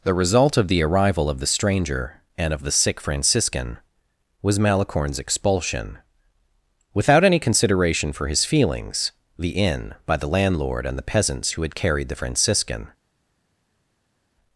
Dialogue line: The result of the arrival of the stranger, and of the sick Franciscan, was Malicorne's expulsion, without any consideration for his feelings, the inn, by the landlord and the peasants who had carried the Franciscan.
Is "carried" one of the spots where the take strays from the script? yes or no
no